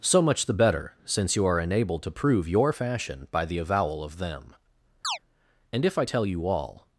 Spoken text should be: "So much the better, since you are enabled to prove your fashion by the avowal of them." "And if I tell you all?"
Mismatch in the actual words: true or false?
false